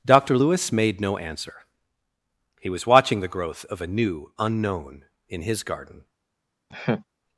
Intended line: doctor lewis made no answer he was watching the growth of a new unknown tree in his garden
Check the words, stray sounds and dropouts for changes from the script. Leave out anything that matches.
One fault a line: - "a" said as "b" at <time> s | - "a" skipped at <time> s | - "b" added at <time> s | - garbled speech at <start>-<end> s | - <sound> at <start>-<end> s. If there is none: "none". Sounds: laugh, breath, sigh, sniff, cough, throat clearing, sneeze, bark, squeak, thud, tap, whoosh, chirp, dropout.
- "tree" skipped at 5.1 s
- laugh at 6.7-7.0 s